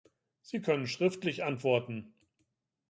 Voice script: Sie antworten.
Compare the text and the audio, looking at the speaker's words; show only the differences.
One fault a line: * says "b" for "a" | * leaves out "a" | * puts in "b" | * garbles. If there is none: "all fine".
* puts in "können schriftlich"